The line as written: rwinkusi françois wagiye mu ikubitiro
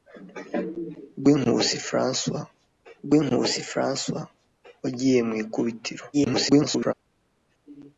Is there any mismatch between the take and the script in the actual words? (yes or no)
yes